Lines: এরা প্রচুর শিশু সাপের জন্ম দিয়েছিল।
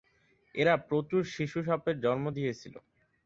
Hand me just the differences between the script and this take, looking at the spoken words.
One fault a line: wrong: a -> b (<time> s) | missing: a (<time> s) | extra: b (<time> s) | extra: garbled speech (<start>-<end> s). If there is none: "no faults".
no faults